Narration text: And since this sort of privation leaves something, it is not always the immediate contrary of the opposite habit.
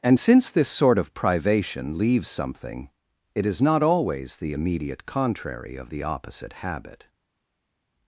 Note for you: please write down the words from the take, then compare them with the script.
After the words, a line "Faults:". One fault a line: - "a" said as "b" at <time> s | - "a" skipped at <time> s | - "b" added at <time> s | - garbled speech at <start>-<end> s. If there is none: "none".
And since this sort of privation leaves something, it is not always the immediate contrary of the opposite habit.
Faults:
none